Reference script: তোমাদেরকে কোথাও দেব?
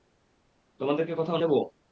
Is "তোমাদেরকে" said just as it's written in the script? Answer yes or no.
yes